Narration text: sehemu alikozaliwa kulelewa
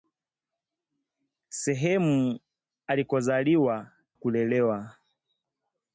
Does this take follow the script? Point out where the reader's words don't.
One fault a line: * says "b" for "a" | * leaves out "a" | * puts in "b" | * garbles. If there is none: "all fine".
all fine